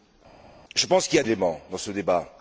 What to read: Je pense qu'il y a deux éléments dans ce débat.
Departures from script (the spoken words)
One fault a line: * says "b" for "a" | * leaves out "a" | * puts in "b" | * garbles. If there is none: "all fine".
* leaves out "deux"